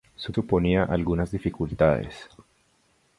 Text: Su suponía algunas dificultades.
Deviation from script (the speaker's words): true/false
false